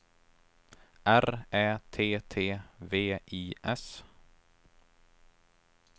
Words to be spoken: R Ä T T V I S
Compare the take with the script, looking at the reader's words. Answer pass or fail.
pass